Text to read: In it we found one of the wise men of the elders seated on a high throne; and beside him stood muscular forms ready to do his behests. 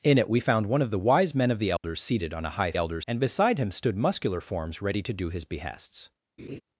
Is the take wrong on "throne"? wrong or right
wrong